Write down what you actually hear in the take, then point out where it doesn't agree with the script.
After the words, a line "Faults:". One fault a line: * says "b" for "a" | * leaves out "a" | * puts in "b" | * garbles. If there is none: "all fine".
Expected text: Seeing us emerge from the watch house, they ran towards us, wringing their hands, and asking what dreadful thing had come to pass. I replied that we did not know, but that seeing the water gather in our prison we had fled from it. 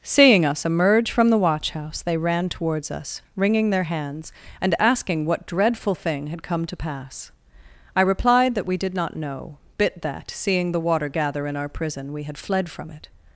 Seeing us emerge from the watch house, they ran towards us, wringing their hands, and asking what dreadful thing had come to pass. I replied that we did not know, bit that seeing the water gather in our prison we had fled from it.
Faults:
* says "bit" for "but"